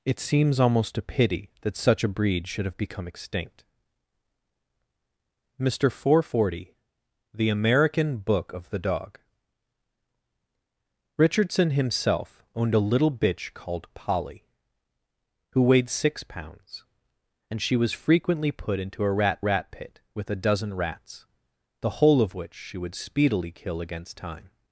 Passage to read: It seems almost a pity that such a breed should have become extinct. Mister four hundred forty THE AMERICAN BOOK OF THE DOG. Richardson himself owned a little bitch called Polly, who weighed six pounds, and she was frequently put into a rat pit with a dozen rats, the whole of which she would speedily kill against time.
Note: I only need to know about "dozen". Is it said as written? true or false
true